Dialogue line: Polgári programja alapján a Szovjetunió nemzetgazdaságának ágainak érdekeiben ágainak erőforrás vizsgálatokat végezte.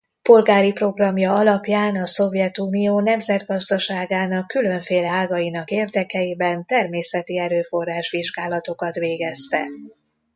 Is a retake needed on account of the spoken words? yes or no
yes